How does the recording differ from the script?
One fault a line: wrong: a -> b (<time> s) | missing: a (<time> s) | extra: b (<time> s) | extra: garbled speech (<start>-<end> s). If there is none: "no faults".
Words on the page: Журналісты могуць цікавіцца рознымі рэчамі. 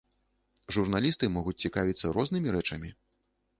no faults